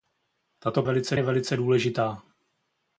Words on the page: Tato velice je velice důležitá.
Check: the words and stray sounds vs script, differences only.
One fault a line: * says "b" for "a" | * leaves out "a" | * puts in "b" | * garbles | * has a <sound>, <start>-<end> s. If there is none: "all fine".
all fine